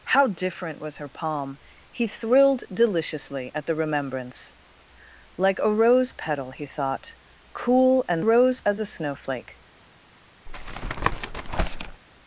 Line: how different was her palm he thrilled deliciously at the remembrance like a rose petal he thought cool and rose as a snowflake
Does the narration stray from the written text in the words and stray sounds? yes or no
yes